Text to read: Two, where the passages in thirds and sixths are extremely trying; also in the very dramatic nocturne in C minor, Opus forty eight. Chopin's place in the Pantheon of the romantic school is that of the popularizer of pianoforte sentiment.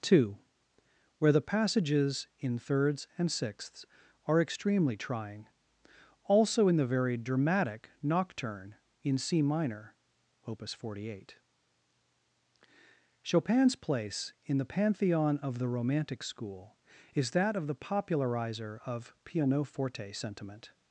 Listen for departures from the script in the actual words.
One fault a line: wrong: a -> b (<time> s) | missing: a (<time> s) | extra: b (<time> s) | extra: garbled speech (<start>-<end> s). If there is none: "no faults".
no faults